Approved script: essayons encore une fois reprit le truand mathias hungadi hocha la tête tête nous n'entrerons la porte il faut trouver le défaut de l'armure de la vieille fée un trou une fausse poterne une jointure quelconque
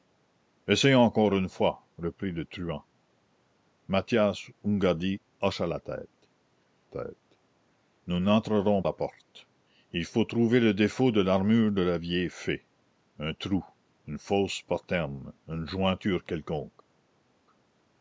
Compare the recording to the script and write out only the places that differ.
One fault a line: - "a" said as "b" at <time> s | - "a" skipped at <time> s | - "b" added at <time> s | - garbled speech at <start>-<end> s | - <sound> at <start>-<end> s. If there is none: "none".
none